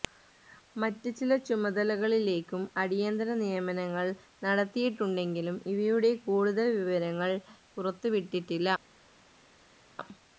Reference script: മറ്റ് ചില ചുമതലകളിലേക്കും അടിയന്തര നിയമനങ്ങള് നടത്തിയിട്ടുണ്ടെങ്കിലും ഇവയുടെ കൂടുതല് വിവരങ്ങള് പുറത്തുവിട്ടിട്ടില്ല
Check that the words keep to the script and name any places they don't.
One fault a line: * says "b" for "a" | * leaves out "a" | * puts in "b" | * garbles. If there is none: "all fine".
all fine